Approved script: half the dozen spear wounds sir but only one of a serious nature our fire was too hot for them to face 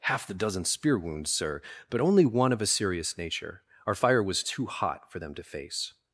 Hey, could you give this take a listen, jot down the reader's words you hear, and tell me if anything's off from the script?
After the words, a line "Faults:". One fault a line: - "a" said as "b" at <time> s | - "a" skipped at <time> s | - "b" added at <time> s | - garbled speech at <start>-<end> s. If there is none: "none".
half the dozen spear wounds sir but only one of a serious nature our fire was too hot for them to face
Faults:
none